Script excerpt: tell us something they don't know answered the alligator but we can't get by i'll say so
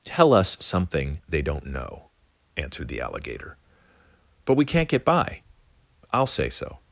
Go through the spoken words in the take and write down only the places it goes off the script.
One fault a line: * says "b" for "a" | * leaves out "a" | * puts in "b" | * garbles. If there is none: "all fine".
all fine